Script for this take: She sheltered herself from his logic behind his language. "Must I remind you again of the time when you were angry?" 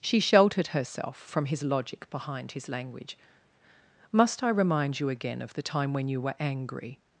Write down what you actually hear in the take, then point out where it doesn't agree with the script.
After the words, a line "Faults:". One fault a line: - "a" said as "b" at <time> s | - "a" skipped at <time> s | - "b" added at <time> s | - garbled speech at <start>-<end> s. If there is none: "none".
She sheltered herself from his logic behind his language. "Must I remind you again of the time when you were angry?"
Faults:
none